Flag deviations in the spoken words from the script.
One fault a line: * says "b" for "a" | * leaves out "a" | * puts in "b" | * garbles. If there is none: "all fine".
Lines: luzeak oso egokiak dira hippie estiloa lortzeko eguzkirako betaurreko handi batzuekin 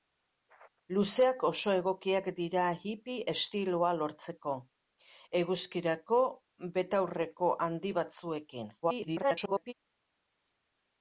* garbles